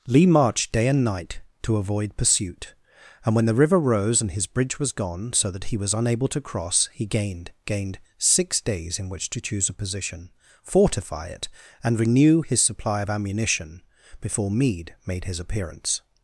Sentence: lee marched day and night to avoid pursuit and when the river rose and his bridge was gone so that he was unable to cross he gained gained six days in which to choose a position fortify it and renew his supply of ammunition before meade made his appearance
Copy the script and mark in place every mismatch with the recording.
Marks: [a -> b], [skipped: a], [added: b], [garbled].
lee marched day and night to avoid pursuit and when the river rose and his bridge was gone so that he was unable to cross he gained gained six days in which to choose a position fortify it and renew his supply of ammunition before meade made his appearance